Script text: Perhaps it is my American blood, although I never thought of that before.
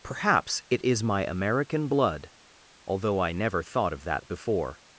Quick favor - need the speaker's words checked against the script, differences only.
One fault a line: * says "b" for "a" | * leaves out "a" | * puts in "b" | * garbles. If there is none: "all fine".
all fine